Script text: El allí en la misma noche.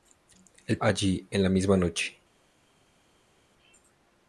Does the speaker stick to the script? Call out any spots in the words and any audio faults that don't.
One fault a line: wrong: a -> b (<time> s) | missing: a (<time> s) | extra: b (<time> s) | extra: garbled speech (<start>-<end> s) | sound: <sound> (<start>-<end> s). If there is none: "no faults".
no faults